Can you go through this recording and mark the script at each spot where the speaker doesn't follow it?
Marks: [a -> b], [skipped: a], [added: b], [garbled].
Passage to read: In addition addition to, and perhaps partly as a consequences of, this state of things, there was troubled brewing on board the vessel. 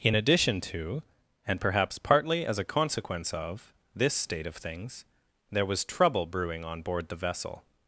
In addition [skipped: addition] to, and perhaps partly as a [consequences -> consequence] of, this state of things, there was [troubled -> trouble] brewing on board the vessel.